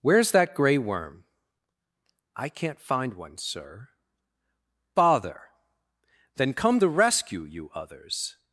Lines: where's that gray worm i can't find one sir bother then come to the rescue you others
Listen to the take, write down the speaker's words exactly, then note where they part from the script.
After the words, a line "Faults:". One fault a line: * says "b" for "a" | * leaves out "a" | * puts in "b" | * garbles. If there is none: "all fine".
where's that gray worm i can't find one sir bother then come the rescue you others
Faults:
* leaves out "to"